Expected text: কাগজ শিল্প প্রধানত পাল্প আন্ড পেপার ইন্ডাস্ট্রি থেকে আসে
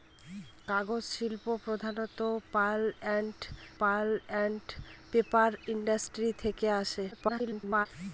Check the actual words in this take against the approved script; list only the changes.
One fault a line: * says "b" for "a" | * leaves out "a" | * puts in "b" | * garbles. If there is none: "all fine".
* puts in "পাল্প আন্ড"
* garbles